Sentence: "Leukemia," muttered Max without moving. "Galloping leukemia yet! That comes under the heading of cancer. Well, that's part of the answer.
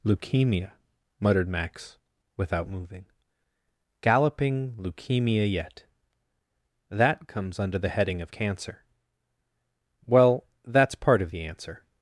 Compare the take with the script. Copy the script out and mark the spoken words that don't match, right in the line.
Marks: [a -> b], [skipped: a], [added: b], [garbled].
"Leukemia," muttered Max without moving. "Galloping leukemia yet! That comes under the heading of cancer. Well, that's part of the answer.